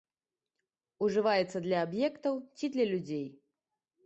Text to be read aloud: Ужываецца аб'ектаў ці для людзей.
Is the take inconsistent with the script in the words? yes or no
yes